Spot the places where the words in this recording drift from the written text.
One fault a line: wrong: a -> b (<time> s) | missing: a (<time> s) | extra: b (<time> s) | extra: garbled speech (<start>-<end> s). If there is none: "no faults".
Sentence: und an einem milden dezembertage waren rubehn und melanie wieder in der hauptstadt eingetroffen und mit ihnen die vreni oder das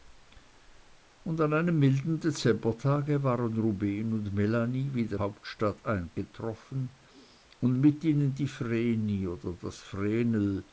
missing: in der (5.2 s)